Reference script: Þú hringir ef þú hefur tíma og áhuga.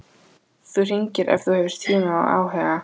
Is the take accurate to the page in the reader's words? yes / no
yes